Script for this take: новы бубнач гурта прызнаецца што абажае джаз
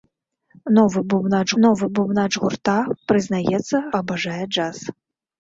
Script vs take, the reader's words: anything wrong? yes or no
yes